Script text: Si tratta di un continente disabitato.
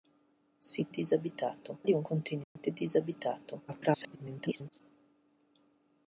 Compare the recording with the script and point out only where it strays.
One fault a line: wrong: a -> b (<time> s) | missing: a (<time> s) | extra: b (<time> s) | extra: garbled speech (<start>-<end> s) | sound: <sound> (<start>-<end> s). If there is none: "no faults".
wrong: tratta -> disabitato (0.9 s)
sound: dropout (2.4-2.6 s)
extra: garbled speech (3.7-4.8 s)